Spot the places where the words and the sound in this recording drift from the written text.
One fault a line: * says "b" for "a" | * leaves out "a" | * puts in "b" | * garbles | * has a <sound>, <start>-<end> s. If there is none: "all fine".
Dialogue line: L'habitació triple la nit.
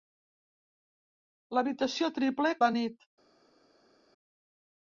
all fine